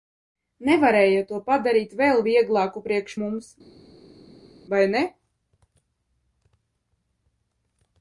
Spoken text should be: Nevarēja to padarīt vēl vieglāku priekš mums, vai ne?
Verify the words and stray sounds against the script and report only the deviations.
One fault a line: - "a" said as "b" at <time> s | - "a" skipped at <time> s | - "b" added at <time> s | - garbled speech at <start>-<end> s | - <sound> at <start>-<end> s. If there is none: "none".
none